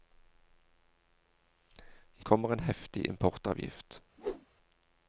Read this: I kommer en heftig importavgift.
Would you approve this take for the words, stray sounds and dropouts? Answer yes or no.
no